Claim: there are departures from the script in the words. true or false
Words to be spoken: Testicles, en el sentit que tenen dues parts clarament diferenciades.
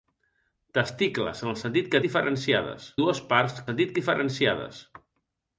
true